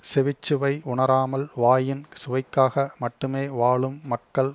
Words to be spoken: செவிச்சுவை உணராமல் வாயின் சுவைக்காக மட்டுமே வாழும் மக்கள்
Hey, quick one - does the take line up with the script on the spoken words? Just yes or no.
yes